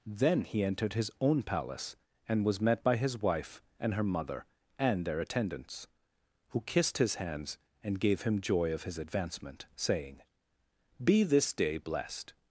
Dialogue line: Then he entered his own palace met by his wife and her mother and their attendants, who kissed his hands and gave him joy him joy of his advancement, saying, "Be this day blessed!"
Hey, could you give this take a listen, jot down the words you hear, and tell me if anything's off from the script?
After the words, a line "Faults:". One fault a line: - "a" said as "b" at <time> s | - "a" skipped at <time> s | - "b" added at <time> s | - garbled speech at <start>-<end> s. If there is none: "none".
Then he entered his own palace and was met by his wife and her mother and their attendants, who kissed his hands and gave him joy of his advancement, saying, "Be this day blessed!"
Faults:
- "and was" added at 2.3 s
- "him joy" skipped at 8.7 s